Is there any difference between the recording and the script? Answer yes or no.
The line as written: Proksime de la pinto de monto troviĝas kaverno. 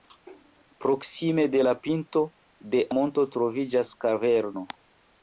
no